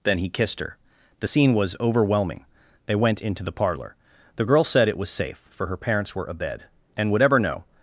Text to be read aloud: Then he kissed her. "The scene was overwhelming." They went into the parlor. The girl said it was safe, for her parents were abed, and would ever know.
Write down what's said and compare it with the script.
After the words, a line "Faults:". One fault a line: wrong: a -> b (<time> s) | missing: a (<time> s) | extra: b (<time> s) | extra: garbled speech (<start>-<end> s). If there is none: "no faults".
Then he kissed her. "The scene was overwhelming." They went into the parlor. The girl said it was safe, for her parents were abed, and would ever know.
Faults:
no faults